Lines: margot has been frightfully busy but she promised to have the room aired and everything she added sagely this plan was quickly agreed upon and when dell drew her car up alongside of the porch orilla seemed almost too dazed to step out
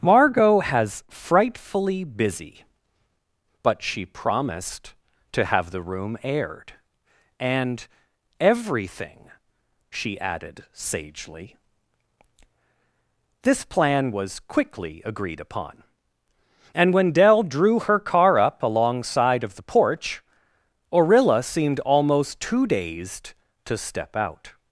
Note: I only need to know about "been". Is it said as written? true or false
false